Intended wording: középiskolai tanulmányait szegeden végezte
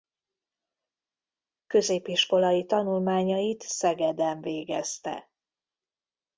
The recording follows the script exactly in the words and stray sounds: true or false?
true